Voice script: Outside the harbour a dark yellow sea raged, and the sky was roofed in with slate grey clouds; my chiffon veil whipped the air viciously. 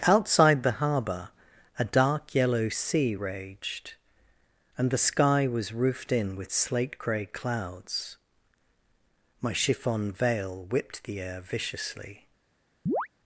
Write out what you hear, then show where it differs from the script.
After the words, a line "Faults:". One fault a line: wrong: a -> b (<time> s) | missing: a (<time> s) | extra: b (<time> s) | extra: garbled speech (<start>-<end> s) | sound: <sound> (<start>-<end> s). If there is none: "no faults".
Outside the harbour a dark yellow sea raged, and the sky was roofed in with slate grey clouds; my chiffon veil whipped the air viciously.
Faults:
sound: chirp (12.9-13.1 s)